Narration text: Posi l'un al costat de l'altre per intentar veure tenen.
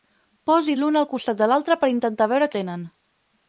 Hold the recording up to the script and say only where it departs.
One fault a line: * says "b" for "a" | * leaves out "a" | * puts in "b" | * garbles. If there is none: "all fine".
all fine